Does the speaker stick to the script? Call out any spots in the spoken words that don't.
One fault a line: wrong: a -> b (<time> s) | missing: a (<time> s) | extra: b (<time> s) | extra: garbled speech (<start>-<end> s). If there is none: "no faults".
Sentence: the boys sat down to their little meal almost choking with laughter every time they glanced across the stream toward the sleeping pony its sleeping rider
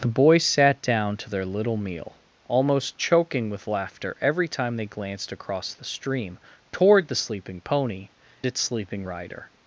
no faults